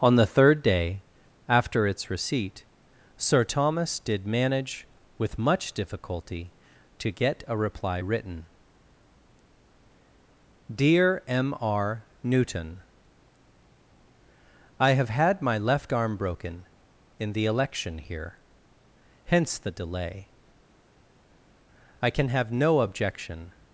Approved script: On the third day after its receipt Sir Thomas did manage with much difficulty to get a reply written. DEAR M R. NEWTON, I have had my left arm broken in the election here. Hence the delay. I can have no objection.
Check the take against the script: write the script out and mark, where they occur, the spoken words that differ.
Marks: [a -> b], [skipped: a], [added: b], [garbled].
On the third day after its receipt Sir Thomas did manage with much difficulty to get a reply written. DEAR M R. NEWTON, I have had my left arm broken in the election here. Hence the delay. I can have no objection.